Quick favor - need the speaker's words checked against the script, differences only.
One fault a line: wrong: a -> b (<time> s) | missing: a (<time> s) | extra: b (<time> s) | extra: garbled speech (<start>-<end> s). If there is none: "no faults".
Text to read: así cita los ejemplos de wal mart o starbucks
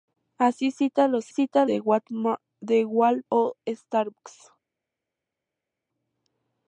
wrong: ejemplos -> cita (1.3 s)
missing: mart (3.2 s)